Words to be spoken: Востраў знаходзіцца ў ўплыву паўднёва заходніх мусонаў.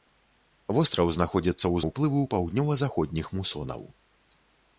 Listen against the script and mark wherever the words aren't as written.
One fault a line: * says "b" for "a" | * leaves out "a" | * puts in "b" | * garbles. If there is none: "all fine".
all fine